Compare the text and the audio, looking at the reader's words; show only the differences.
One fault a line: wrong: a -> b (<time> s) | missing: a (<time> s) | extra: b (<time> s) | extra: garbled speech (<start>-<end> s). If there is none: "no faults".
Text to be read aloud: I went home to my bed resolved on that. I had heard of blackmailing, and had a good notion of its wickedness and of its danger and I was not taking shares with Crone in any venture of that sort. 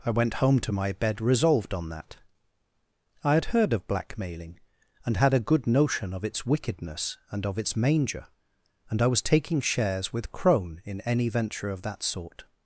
wrong: danger -> manger (7.8 s)
missing: not (9.2 s)